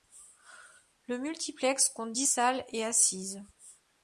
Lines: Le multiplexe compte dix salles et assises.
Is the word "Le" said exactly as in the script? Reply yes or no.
yes